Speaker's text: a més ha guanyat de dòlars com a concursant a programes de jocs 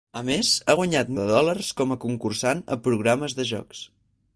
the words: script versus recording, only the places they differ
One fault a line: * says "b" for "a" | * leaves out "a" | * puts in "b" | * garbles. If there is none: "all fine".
all fine